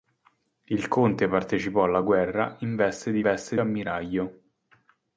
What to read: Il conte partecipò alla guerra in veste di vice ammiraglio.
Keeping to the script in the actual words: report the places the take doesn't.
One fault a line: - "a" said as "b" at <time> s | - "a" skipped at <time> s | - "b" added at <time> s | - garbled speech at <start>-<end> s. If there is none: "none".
- "vice" said as "veste" at 3.2 s